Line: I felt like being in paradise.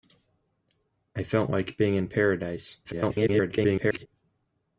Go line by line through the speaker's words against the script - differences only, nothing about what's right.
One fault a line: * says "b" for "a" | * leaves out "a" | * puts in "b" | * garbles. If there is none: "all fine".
* garbles